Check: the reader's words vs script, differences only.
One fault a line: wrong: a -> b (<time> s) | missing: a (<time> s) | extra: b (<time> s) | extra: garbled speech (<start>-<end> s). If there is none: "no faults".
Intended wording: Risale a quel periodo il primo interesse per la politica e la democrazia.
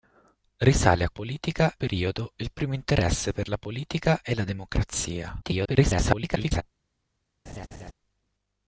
wrong: quel -> politica (1.1 s)
extra: garbled speech (5.4-6.6 s)